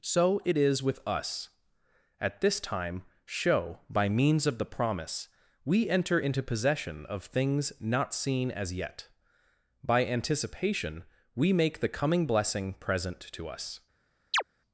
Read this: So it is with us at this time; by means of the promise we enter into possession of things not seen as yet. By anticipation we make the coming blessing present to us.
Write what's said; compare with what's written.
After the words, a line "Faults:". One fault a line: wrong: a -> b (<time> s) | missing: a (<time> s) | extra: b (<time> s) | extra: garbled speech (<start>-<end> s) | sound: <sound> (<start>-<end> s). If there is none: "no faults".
So it is with us at this time; show by means of the promise we enter into possession of things not seen as yet. By anticipation we make the coming blessing present to us.
Faults:
extra: show (3.2 s)
sound: chirp (14.3-14.4 s)